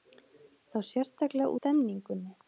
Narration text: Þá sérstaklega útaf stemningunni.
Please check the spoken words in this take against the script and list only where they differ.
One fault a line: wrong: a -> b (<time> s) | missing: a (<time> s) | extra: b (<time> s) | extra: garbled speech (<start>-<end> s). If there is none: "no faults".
missing: útaf (1.5 s)